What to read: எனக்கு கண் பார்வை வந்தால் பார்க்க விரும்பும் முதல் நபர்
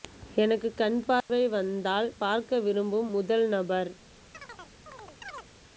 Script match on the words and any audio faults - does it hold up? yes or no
no